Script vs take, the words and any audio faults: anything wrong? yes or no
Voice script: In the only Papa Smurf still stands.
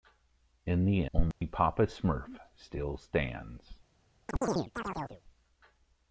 yes